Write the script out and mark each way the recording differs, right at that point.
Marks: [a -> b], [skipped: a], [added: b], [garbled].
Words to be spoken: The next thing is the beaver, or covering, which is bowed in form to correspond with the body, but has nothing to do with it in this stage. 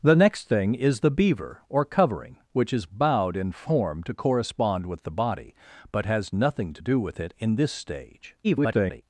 The next thing is the beaver, or covering, which is bowed in form to correspond with the body, but has nothing to do with it in this stage. [garbled]